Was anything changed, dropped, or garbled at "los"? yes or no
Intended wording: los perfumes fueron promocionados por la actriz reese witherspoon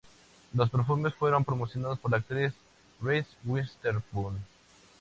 no